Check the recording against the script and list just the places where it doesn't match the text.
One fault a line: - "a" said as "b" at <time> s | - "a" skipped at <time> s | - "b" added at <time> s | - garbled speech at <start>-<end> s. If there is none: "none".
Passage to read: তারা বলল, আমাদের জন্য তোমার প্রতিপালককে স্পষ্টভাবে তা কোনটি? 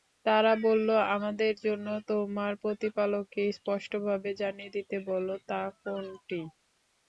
- "জানিয়ে দিতে বল" added at 4.4 s